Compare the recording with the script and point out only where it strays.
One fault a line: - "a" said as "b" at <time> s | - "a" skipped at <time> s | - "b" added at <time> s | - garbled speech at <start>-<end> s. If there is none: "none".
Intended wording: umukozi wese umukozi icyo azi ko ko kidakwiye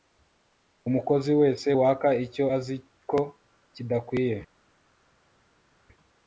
- "umukozi" said as "waka" at 1.8 s
- "ko" skipped at 3.2 s